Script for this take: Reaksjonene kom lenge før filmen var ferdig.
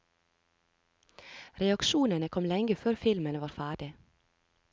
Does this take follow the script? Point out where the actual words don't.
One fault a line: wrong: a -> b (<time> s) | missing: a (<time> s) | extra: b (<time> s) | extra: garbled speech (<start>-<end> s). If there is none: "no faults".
no faults